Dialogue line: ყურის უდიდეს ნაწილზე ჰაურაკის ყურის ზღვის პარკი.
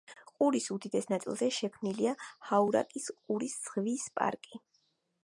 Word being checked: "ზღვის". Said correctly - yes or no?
yes